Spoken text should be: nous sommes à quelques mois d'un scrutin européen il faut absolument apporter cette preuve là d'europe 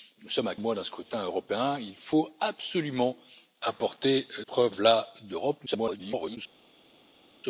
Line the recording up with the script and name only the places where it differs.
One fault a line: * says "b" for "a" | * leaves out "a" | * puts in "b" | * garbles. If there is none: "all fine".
* leaves out "quelques"
* leaves out "cette"
* garbles